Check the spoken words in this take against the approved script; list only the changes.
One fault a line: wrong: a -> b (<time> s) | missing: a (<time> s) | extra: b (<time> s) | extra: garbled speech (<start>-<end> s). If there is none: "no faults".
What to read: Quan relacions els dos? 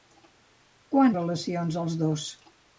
no faults